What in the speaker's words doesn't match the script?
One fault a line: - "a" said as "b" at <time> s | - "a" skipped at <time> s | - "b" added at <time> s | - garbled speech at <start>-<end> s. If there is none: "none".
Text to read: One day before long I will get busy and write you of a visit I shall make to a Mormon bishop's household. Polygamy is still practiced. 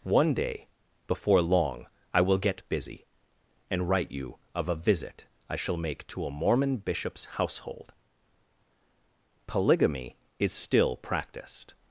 none